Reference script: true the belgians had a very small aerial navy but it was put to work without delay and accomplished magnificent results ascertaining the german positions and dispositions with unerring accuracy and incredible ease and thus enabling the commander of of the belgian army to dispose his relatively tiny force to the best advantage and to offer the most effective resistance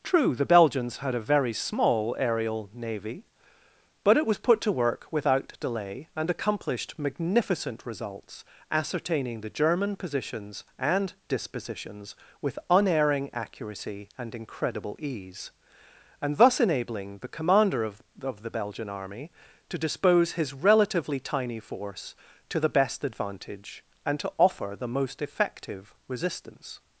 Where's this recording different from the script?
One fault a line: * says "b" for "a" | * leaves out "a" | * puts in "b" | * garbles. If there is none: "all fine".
all fine